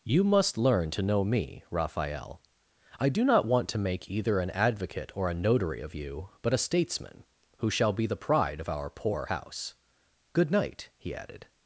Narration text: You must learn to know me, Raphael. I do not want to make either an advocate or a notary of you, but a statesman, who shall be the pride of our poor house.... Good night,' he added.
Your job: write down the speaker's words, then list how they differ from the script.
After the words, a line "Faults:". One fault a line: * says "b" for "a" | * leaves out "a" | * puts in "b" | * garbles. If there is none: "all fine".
You must learn to know me, Raphael. I do not want to make either an advocate or a notary of you, but a statesman, who shall be the pride of our poor house.... Good night,' he added.
Faults:
all fine